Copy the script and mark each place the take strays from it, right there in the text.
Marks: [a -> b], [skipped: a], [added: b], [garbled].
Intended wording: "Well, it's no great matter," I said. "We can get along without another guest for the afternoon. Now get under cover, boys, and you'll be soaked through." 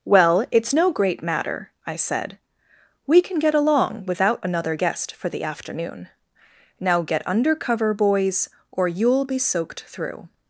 "Well, it's no great matter," I said. "We can get along without another guest for the afternoon. Now get under cover, boys, [and -> or] you'll be soaked through."